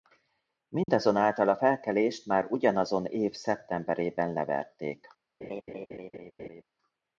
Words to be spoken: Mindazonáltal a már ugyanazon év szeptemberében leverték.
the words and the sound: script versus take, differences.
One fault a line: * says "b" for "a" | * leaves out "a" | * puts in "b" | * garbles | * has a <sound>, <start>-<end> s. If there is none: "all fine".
* has a dropout, 0.8-0.9 s
* puts in "felkelést"
* has a laugh, 5.4-6.6 s